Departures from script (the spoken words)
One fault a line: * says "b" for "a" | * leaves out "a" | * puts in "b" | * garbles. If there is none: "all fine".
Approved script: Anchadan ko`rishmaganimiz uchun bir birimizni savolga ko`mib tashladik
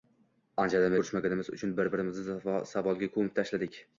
all fine